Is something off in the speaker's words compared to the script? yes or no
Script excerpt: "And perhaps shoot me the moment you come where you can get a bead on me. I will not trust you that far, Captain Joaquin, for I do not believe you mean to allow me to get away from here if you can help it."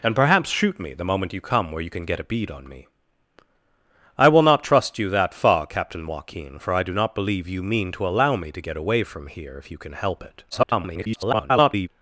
yes